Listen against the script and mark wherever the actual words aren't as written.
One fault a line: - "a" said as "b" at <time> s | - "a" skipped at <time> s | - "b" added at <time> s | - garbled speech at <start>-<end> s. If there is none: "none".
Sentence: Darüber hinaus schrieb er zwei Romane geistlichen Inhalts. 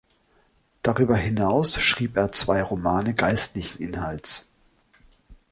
none